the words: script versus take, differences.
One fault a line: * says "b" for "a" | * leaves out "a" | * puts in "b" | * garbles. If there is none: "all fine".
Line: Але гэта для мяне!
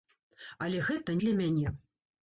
all fine